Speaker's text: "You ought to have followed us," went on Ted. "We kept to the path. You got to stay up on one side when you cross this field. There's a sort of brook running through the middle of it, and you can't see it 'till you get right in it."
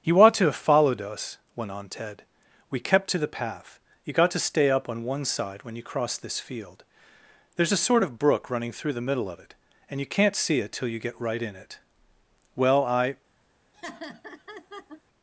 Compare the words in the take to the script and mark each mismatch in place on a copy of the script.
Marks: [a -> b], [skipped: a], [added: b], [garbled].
"You ought to have followed us," went on Ted. "We kept to the path. You got to stay up on one side when you cross this field. There's a sort of brook running through the middle of it, and you can't see it 'till you get right in it." [added: Well I]